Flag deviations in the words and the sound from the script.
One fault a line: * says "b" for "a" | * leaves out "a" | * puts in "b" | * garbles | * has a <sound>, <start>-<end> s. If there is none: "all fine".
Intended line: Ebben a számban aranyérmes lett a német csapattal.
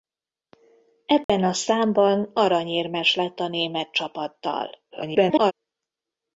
* has a dropout, 1.2-1.3 s
* garbles